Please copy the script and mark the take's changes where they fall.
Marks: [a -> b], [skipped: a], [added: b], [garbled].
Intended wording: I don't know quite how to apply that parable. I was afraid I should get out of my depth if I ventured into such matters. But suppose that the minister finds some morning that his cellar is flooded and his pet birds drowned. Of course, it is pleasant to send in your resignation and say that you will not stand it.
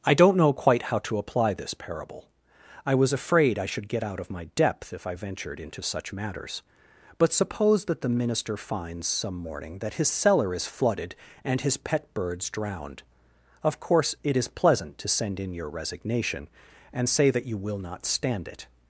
I don't know quite how to apply [that -> this] parable. I was afraid I should get out of my depth if I ventured into such matters. But suppose that the minister finds some morning that his cellar is flooded and his pet birds drowned. Of course, it is pleasant to send in your resignation and say that you will not stand it.